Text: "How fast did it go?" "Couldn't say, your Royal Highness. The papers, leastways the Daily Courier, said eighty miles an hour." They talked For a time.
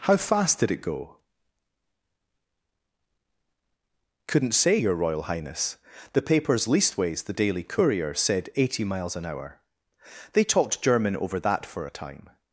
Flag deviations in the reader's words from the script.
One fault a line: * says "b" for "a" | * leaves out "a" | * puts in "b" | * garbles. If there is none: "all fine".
* puts in "German over that"